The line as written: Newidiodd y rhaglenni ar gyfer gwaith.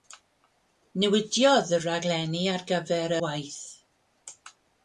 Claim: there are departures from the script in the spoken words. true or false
false